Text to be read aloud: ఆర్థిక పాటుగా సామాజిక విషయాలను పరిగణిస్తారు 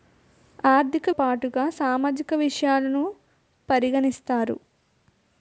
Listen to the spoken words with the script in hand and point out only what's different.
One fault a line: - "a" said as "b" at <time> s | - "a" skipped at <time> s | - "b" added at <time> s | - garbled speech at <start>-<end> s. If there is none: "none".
none